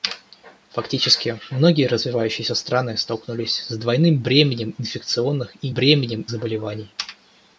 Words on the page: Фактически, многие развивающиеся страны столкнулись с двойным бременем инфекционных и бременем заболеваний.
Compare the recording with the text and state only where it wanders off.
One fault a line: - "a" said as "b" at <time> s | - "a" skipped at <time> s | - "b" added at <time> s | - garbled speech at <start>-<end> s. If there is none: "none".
none